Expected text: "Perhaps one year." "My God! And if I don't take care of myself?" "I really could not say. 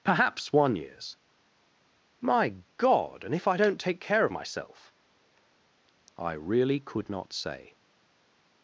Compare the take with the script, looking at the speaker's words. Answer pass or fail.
fail